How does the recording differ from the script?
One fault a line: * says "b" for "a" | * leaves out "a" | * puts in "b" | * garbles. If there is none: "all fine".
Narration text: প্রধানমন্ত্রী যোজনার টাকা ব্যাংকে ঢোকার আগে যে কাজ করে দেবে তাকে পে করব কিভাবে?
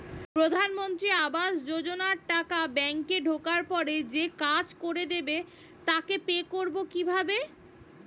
* puts in "আবাস"
* says "পরে" for "আগে"